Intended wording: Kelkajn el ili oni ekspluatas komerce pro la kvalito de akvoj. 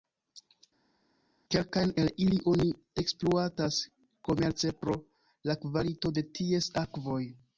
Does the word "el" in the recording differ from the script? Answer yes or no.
no